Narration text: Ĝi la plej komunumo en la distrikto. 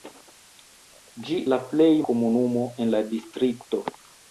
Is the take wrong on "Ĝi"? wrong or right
right